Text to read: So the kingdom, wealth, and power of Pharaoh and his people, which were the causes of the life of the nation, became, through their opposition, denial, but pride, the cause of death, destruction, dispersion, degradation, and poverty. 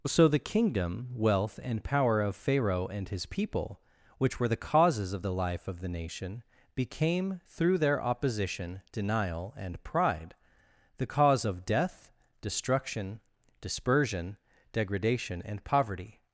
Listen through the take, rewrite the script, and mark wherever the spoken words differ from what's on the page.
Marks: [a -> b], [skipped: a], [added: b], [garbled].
So the kingdom, wealth, and power of Pharaoh and his people, which were the causes of the life of the nation, became, through their opposition, denial, [but -> and] pride, the cause of death, destruction, dispersion, degradation, and poverty.